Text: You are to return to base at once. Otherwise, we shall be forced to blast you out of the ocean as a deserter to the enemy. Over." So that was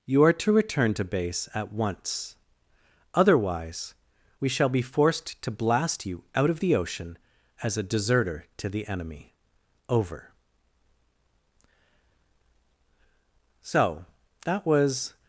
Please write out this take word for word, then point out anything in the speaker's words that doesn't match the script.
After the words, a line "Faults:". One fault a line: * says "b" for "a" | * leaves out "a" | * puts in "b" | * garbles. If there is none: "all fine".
You are to return to base at once. Otherwise, we shall be forced to blast you out of the ocean as a deserter to the enemy. Over." So that was
Faults:
all fine